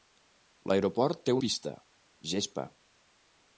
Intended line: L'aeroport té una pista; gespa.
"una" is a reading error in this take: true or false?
true